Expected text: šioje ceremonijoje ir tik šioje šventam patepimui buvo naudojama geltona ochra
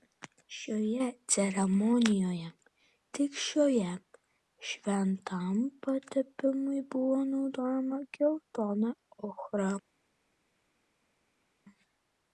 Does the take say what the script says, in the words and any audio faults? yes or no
no